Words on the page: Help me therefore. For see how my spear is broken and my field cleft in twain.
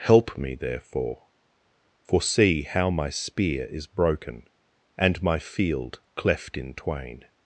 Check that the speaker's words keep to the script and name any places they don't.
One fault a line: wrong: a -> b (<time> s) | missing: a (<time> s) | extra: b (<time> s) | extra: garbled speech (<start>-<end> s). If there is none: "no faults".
no faults